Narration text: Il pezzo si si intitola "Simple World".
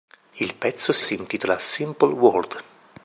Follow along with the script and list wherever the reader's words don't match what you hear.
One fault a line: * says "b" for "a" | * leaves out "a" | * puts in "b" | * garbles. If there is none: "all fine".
all fine